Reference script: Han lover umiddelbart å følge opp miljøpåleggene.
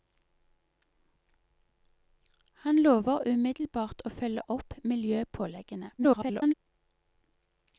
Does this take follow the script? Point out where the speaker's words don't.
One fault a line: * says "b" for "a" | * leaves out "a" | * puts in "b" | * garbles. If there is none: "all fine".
* garbles